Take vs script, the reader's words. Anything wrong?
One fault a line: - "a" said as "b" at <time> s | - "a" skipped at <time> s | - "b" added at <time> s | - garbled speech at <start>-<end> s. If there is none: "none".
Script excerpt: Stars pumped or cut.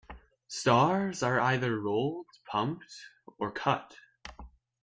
- "are either rolled" added at 1.2 s